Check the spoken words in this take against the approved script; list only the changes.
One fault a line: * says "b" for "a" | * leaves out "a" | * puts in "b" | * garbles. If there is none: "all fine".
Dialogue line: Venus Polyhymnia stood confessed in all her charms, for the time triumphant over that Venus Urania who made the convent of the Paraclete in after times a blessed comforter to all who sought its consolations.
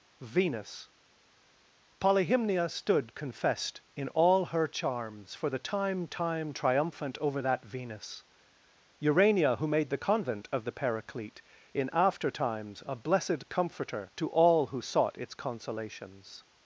* puts in "time"